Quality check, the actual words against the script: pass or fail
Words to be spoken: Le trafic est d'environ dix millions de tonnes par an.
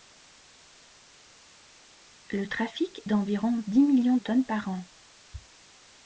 fail